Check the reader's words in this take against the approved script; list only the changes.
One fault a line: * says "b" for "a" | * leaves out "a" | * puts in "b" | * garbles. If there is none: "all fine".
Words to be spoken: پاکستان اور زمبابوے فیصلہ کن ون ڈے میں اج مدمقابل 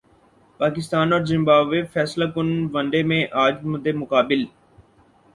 all fine